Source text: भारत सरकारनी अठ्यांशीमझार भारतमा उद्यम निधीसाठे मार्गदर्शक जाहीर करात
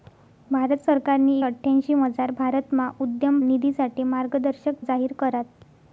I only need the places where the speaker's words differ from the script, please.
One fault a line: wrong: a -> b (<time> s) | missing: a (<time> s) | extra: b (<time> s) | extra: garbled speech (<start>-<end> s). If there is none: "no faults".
no faults